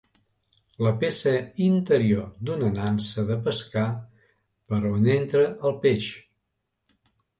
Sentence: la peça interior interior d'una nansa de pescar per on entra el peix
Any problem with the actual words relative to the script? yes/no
yes